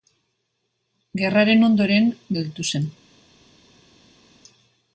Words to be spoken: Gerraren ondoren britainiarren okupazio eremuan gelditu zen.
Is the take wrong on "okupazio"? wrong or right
wrong